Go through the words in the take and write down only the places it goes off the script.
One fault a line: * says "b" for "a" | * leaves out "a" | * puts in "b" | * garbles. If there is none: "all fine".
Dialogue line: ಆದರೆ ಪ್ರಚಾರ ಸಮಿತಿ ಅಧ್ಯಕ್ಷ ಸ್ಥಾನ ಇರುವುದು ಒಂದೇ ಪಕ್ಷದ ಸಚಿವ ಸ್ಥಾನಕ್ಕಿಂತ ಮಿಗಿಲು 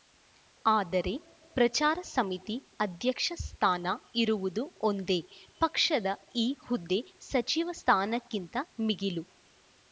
* puts in "ಈ ಹುದ್ದೆ"